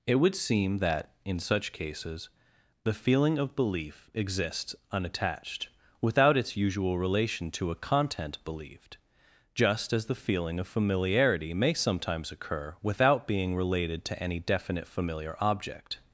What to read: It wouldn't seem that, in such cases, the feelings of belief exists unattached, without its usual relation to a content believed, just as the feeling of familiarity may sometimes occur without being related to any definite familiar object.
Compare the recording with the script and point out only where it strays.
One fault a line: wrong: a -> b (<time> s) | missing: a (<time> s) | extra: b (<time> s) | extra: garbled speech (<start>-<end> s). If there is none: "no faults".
wrong: wouldn't -> would (0.1 s)
wrong: feelings -> feeling (2.9 s)